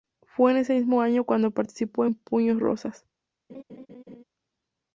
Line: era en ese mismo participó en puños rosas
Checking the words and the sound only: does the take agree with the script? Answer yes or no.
no